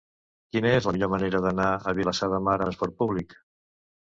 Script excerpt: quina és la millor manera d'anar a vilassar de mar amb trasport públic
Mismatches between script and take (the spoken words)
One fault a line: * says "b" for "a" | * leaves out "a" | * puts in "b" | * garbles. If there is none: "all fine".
* leaves out "amb"